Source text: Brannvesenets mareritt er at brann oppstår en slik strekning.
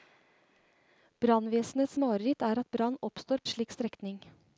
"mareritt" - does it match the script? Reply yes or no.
yes